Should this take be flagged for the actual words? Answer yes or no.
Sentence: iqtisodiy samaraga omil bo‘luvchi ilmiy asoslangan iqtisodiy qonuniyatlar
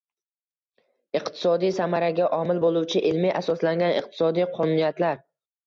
no